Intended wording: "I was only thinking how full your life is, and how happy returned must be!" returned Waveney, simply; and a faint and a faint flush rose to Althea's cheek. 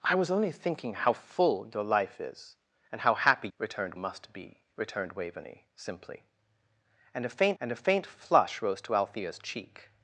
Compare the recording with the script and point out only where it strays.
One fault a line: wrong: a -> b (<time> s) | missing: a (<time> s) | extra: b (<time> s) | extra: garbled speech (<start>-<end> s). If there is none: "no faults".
no faults